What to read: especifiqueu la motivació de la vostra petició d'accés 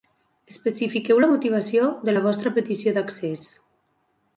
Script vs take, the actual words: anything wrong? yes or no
no